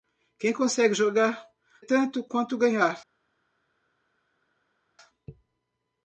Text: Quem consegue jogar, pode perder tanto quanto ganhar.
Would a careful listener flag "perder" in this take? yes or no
yes